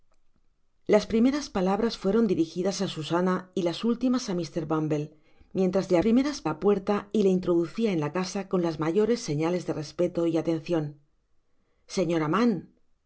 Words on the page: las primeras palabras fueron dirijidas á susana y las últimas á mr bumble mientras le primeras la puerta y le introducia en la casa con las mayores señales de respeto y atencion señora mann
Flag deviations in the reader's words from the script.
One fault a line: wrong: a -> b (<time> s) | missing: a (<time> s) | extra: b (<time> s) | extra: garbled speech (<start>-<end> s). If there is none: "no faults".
no faults